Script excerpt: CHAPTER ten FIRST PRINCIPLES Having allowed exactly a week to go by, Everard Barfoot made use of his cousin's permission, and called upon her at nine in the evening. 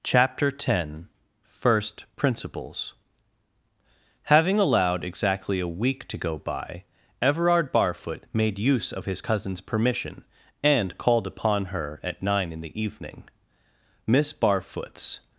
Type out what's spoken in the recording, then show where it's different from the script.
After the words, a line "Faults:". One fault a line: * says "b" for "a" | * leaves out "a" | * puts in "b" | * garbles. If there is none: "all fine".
CHAPTER ten FIRST PRINCIPLES Having allowed exactly a week to go by, Everard Barfoot made use of his cousin's permission, and called upon her at nine in the evening. Miss Barfoot's
Faults:
* puts in "Miss Barfoot's"